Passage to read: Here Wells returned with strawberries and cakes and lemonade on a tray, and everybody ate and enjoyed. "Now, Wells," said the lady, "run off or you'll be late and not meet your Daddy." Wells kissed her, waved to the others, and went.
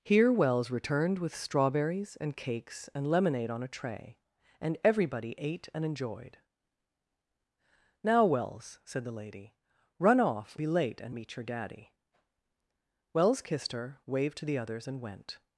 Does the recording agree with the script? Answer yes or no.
no